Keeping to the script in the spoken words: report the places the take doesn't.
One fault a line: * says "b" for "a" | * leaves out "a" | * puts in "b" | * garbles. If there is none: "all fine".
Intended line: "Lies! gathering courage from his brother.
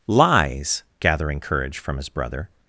all fine